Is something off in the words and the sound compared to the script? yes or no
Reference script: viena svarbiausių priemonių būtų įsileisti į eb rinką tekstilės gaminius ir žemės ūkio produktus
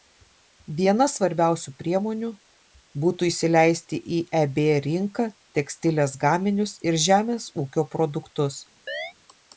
yes